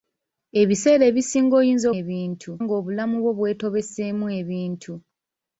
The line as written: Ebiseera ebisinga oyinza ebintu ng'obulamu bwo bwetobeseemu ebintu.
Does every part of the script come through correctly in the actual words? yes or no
yes